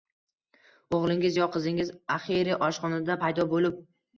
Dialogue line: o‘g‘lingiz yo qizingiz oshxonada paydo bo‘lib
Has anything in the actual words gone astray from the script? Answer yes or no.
yes